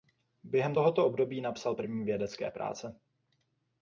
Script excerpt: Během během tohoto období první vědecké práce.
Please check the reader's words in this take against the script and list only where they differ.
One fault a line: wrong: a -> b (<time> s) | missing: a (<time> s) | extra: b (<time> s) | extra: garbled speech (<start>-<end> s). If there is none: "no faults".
missing: během (0.8 s)
extra: napsal (1.4 s)